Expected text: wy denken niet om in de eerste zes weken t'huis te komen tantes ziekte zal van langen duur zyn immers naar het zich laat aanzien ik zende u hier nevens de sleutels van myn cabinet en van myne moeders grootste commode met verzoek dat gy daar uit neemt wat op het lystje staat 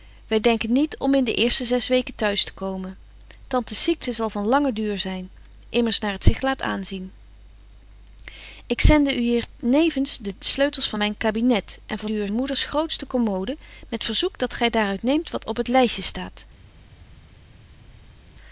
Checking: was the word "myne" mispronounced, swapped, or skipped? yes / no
yes